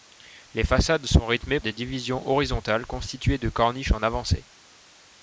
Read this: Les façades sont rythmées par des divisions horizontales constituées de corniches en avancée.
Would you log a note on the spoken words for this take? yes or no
yes